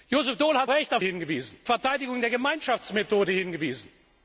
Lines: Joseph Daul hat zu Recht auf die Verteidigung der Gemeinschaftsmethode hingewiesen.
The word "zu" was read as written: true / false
false